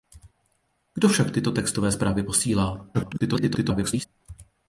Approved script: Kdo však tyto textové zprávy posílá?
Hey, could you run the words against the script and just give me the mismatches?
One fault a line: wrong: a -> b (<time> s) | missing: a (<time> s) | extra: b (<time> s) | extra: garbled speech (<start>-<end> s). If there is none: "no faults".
extra: garbled speech (2.9-4.1 s)